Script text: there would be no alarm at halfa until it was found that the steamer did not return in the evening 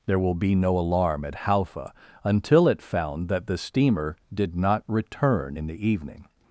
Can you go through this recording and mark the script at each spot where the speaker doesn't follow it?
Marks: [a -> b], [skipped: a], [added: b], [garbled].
there [would -> will] be no alarm at halfa until it [skipped: was] found that the steamer did not return in the evening